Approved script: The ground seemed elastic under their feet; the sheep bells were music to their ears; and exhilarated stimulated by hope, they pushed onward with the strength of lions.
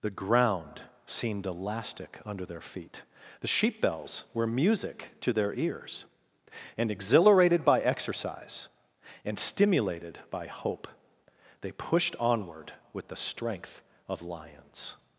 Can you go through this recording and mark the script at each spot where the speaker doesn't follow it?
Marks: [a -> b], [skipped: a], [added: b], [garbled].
The ground seemed elastic under their feet; the sheep bells were music to their ears; and exhilarated [added: by exercise and] stimulated by hope, they pushed onward with the strength of lions.